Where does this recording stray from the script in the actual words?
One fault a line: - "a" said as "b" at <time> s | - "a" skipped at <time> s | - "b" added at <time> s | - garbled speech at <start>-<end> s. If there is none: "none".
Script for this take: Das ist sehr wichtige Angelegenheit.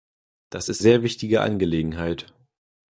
none